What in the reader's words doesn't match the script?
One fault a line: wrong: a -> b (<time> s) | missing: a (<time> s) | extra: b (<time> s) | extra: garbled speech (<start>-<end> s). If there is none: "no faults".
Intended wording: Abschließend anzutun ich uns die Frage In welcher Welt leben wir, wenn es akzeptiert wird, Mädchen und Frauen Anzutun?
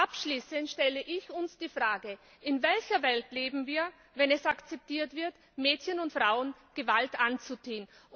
wrong: anzutun -> stelle (0.7 s)
extra: Gewalt (6.7 s)